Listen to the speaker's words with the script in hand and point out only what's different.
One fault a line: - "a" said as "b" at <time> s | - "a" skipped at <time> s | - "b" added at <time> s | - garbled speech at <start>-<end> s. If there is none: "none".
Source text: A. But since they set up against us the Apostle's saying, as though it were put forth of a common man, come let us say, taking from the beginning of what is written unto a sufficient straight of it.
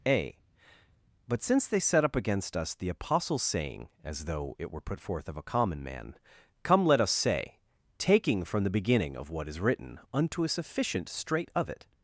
none